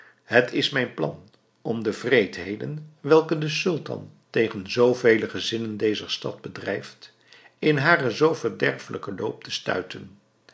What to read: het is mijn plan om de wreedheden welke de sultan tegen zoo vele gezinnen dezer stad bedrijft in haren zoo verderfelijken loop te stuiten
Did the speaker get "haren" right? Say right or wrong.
right